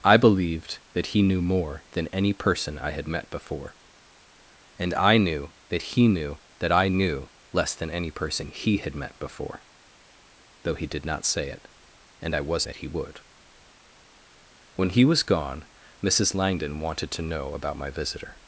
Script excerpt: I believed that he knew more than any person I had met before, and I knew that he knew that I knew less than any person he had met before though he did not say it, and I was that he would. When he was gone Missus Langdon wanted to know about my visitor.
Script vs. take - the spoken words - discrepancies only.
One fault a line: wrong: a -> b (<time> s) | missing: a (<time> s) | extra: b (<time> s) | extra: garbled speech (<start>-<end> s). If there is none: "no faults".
no faults